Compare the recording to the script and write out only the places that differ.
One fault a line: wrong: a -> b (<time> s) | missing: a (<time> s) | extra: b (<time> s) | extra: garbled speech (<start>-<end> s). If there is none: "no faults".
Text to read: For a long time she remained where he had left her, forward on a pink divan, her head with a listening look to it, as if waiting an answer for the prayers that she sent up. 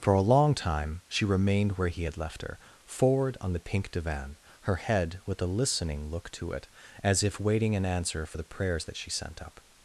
wrong: a -> the (3.5 s)